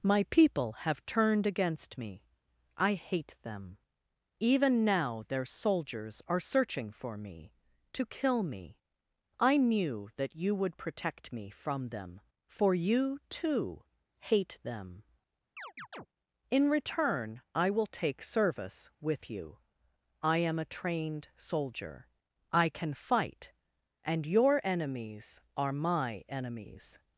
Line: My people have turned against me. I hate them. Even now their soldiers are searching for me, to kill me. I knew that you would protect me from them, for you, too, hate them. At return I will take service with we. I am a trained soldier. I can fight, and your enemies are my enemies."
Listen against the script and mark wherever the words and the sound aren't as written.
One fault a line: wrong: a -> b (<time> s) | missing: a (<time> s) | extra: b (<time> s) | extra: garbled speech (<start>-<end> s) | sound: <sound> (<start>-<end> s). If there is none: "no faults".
sound: chirp (15.6-16.1 s)
wrong: At -> In (16.5 s)
wrong: we -> you (19.3 s)